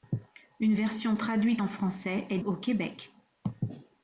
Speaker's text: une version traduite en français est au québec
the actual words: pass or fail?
pass